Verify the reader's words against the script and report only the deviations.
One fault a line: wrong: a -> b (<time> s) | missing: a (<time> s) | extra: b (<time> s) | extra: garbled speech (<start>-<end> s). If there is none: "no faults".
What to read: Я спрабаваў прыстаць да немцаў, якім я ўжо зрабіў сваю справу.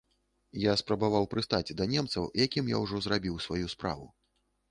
no faults